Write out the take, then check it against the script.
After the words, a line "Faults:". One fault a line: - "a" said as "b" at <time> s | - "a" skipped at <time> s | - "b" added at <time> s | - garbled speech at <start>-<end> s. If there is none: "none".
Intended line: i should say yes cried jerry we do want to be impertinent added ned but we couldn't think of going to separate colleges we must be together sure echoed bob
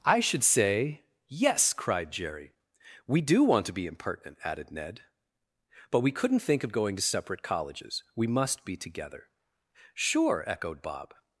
i should say yes cried jerry we do want to be impertinent added ned but we couldn't think of going to separate colleges we must be together sure echoed bob
Faults:
none